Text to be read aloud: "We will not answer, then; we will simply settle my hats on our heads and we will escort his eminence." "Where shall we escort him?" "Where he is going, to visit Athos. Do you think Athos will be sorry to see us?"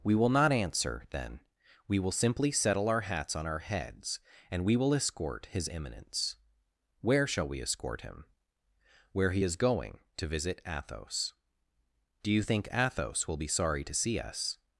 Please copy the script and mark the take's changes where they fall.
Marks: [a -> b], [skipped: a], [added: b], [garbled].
"We will not answer, then; we will simply settle [my -> our] hats on our heads and we will escort his eminence." "Where shall we escort him?" "Where he is going, to visit Athos. Do you think Athos will be sorry to see us?"